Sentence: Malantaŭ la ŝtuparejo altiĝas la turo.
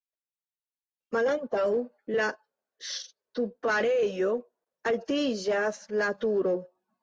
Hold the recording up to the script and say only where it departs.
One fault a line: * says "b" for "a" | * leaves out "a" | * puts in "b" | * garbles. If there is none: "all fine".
all fine